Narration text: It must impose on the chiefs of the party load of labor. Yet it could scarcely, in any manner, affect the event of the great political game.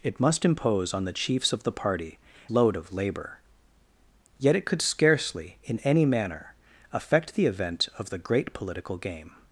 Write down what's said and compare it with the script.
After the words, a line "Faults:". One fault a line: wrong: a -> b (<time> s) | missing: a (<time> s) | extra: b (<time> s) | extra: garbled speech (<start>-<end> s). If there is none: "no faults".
It must impose on the chiefs of the party load of labor. Yet it could scarcely, in any manner, affect the event of the great political game.
Faults:
no faults